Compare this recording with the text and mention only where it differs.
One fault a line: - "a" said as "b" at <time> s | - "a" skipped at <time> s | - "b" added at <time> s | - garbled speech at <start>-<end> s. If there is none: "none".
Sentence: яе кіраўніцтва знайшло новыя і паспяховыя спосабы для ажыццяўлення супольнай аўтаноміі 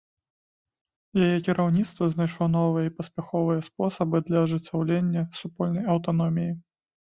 none